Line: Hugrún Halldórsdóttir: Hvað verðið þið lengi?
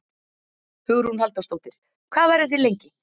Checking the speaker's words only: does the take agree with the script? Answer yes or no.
yes